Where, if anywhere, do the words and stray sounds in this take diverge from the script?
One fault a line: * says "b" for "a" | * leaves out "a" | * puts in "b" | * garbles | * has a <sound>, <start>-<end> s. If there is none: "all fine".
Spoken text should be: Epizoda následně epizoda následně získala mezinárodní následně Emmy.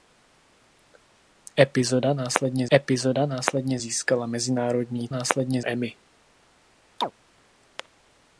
* has a chirp, 7.0-7.1 s